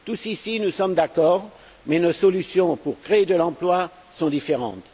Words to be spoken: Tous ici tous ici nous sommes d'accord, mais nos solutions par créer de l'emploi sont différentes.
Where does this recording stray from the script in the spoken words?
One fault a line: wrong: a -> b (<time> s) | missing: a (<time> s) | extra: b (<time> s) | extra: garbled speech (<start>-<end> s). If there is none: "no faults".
missing: tous ici (0.6 s)
wrong: par -> pour (2.8 s)